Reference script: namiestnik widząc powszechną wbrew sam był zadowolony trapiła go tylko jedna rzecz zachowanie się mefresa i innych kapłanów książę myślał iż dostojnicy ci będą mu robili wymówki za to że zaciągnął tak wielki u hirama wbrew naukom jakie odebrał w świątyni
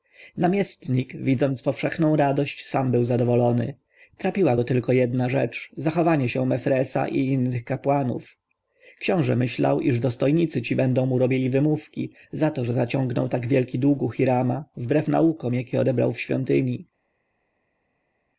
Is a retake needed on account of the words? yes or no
yes